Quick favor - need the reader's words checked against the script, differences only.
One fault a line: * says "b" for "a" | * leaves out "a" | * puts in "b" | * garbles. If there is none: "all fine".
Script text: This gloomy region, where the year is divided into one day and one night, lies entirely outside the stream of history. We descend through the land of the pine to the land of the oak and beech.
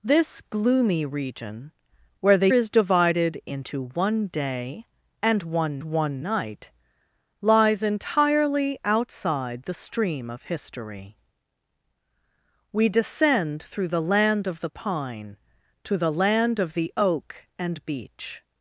* leaves out "year"
* puts in "one"